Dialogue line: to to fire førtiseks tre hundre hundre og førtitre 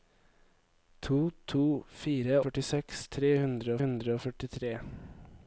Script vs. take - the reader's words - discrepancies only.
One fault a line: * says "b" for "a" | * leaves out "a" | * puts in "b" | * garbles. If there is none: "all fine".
all fine